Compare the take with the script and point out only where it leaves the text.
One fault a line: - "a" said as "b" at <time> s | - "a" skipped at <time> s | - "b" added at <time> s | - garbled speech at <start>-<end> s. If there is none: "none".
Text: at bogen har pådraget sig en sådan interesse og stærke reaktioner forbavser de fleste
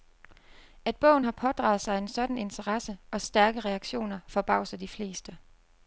none